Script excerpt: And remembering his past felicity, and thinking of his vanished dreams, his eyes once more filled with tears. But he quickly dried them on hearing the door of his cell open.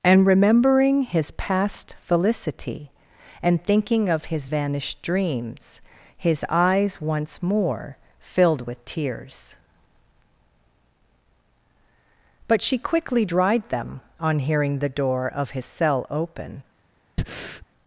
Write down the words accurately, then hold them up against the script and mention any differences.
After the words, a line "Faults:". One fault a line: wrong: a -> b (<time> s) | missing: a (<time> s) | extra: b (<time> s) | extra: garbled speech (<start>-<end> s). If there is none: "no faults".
And remembering his past felicity, and thinking of his vanished dreams, his eyes once more filled with tears. But she quickly dried them on hearing the door of his cell open.
Faults:
wrong: he -> she (12.6 s)